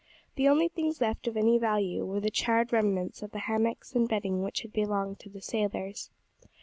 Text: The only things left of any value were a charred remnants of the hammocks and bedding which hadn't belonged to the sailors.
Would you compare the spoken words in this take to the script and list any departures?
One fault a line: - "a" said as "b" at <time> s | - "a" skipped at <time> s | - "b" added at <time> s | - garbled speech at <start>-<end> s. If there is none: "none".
- "a" said as "the" at 2.2 s
- "hadn't" said as "had" at 4.6 s